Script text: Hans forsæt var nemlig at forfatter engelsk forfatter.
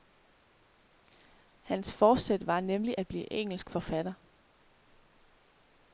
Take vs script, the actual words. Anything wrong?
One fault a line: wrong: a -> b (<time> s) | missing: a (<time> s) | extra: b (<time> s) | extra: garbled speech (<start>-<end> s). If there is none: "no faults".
wrong: forfatter -> blive (3.1 s)